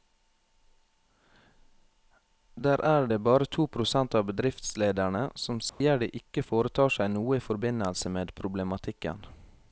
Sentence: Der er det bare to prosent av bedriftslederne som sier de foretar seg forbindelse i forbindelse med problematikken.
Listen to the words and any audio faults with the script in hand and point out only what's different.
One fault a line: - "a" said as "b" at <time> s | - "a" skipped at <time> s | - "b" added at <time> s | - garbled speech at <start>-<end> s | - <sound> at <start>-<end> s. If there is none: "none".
- dropout at 5.7-5.8 s
- "ikke" added at 6.2 s
- "forbindelse" said as "noe" at 7.1 s